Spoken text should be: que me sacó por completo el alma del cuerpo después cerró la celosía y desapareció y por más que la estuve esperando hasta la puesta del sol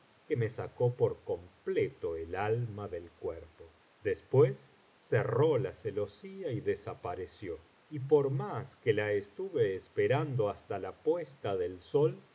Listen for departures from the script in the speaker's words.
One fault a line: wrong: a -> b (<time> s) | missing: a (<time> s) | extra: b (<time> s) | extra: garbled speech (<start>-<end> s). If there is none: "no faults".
no faults